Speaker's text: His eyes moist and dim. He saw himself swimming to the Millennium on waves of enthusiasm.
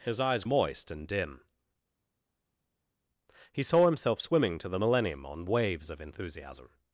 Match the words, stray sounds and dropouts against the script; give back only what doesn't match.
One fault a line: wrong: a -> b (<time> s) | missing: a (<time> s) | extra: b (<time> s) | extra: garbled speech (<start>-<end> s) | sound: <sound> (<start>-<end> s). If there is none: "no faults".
no faults